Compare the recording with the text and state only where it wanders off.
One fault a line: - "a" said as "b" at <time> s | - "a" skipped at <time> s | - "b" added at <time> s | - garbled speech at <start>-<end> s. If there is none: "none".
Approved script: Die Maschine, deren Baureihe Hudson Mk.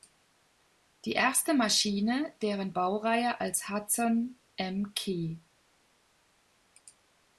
- "erste" added at 1.1 s
- "als" added at 3.4 s